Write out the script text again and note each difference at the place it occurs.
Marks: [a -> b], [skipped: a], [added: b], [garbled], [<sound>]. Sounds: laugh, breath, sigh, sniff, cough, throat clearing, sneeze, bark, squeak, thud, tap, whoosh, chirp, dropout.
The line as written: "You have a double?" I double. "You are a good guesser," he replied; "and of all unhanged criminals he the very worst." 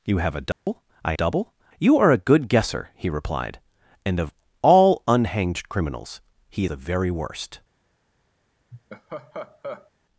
"You have a double?" [dropout] I double. "You are a good guesser," he replied; "and of all unhanged criminals he the very worst." [laugh]